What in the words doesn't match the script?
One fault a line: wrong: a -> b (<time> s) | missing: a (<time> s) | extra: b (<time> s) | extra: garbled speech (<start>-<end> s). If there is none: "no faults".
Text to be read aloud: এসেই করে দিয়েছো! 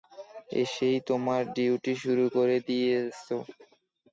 extra: তোমার ডিউটি শুরু (1.1 s)